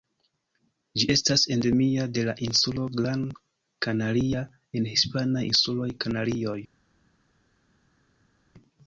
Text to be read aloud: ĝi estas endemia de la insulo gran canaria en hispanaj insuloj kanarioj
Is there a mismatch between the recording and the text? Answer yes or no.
no